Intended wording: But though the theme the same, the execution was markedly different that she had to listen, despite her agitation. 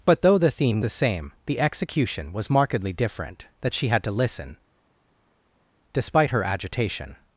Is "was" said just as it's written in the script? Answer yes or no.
yes